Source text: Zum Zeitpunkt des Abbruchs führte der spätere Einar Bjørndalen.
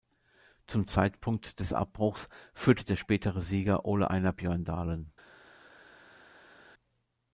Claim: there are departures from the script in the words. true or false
true